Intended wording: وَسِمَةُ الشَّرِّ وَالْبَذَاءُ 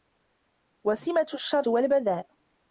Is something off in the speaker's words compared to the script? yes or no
no